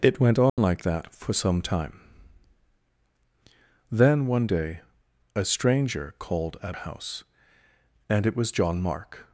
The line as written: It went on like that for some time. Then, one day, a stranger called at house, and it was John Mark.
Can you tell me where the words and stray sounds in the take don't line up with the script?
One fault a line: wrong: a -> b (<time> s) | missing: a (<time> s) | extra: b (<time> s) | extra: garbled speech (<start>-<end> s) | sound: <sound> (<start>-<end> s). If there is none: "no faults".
sound: dropout (0.5-0.6 s)